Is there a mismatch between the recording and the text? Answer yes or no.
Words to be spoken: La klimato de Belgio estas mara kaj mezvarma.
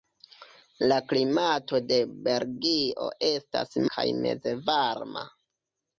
yes